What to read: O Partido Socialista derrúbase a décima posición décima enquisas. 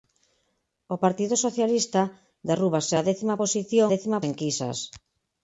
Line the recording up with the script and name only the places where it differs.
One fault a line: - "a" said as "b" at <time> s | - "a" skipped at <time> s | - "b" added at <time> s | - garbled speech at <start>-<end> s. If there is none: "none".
none